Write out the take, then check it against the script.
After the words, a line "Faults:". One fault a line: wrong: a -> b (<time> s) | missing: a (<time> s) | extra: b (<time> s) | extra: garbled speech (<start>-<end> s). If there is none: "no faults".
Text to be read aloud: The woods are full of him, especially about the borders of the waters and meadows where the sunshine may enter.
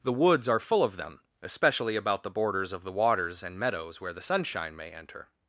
The woods are full of them, especially about the borders of the waters and meadows where the sunshine may enter.
Faults:
wrong: him -> them (1.0 s)